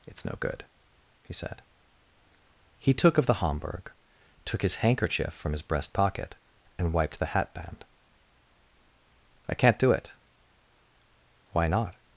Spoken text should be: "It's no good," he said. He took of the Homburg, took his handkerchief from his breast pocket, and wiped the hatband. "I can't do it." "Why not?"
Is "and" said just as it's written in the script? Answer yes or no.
yes